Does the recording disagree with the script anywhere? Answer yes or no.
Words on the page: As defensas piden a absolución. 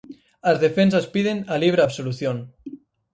yes